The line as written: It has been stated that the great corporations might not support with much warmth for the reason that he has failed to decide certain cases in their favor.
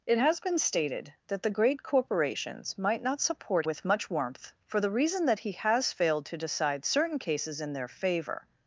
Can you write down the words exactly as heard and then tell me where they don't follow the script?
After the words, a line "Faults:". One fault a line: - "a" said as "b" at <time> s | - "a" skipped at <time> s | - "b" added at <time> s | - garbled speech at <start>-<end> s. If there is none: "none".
It has been stated that the great corporations might not support with much warmth for the reason that he has failed to decide certain cases in their favor.
Faults:
none